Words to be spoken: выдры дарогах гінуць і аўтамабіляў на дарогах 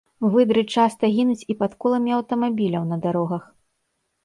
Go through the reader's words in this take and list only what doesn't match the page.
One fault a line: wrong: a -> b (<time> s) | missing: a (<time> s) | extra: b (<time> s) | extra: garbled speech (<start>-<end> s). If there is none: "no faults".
wrong: дарогах -> часта (0.8 s)
extra: пад коламі (1.6 s)